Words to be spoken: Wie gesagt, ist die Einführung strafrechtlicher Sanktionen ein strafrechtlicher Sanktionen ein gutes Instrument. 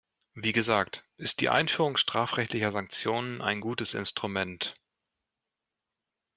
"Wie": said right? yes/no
yes